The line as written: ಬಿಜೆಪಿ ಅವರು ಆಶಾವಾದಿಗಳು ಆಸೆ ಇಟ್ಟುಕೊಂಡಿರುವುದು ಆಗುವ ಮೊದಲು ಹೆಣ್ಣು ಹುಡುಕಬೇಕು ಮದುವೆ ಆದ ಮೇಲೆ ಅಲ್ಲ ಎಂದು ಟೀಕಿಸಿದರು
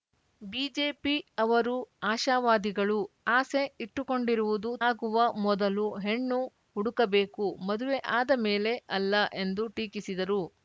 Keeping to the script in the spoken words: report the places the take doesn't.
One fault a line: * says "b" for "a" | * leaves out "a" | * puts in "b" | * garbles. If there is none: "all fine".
all fine